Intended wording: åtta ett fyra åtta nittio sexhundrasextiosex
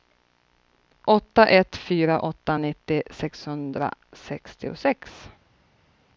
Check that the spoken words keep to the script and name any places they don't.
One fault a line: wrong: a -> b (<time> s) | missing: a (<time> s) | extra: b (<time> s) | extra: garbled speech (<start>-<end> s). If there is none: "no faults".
no faults